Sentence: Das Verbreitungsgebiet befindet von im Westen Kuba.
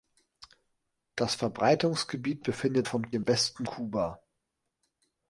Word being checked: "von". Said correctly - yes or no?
yes